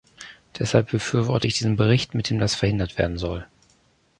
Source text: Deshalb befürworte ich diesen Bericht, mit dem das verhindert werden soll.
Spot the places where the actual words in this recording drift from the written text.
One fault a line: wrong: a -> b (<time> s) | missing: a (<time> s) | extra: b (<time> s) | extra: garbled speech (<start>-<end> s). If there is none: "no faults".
no faults